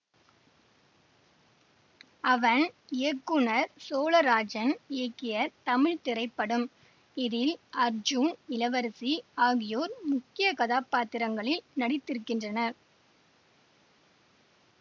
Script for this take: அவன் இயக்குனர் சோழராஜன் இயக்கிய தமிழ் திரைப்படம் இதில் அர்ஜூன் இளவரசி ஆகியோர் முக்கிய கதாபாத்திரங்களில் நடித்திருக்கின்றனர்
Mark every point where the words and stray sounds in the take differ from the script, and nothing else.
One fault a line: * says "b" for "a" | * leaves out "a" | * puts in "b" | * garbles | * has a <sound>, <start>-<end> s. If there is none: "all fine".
all fine